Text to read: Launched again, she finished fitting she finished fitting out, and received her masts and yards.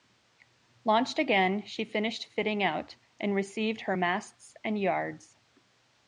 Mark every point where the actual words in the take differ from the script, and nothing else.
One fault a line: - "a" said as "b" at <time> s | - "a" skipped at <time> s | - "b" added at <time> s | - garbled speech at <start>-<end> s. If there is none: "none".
- "she finished fitting" skipped at 2.6 s